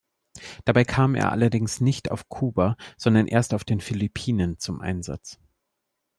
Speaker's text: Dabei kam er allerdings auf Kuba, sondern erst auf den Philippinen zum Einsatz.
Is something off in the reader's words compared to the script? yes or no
yes